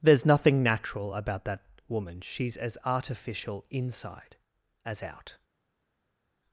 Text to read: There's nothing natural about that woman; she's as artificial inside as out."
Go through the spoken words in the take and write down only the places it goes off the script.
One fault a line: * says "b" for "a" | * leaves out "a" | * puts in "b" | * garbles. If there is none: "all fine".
all fine